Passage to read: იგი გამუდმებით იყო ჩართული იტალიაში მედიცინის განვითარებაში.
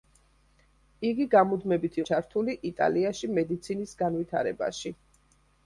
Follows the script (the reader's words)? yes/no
no